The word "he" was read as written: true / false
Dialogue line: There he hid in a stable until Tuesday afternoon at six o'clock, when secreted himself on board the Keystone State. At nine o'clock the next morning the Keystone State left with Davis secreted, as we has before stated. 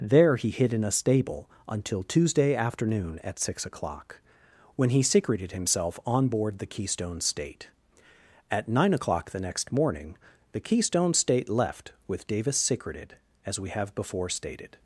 true